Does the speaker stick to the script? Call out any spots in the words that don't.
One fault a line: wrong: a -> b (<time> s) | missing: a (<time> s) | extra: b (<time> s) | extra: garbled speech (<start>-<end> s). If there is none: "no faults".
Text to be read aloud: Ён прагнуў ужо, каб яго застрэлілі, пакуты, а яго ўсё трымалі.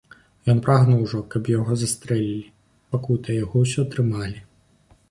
no faults